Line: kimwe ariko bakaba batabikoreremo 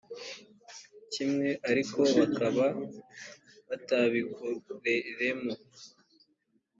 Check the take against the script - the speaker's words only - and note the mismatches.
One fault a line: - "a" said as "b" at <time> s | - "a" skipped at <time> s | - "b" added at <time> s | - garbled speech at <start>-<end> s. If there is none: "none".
none